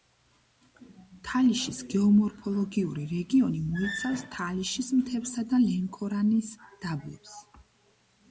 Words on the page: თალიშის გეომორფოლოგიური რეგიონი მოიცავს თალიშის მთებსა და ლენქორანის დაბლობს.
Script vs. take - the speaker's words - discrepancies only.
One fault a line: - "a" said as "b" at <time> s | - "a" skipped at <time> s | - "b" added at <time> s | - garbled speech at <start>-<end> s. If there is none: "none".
none